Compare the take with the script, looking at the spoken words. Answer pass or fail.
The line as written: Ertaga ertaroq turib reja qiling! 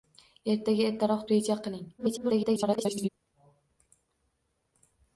fail